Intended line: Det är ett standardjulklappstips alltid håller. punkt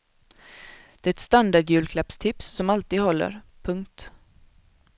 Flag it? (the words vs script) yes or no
yes